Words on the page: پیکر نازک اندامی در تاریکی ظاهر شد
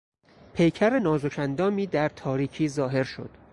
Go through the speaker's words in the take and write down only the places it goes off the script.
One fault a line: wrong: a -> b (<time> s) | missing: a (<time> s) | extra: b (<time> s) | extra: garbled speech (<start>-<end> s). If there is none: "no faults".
no faults